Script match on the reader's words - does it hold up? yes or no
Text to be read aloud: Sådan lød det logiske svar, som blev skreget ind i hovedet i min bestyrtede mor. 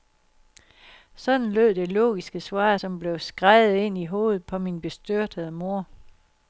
no